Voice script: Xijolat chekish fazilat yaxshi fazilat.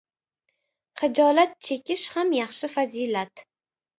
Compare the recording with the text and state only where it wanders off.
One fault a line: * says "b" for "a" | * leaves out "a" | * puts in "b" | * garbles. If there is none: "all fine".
* says "ham" for "fazilat"